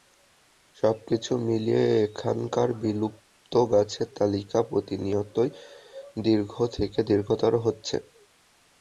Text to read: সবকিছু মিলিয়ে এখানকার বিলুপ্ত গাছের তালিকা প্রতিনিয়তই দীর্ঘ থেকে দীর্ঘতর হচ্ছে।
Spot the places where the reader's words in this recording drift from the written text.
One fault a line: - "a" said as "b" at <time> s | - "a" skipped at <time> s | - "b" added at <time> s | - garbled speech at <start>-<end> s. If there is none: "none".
none